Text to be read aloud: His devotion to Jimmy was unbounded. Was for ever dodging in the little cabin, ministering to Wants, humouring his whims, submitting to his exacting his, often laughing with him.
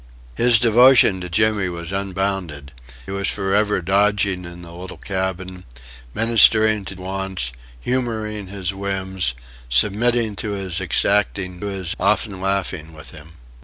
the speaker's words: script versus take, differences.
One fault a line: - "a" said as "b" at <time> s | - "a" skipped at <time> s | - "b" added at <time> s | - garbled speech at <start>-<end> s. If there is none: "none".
none